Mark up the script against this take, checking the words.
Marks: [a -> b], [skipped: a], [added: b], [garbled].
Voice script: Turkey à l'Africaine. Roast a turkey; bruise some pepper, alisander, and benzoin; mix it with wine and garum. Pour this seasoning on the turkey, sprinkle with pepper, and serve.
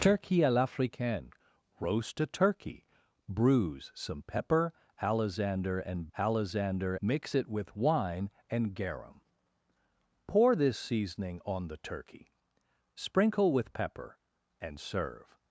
Turkey à l'Africaine. Roast a turkey; bruise some pepper, alisander, and [benzoin; -> alisander] mix it with wine and garum. Pour this seasoning on the turkey, sprinkle with pepper, and serve.